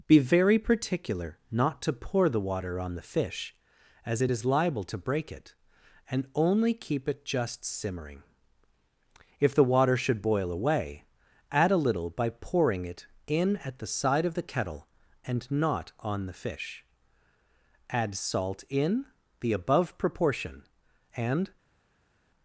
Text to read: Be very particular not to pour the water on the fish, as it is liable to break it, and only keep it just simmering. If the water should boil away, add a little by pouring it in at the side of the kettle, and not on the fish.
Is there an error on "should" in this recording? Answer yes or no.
no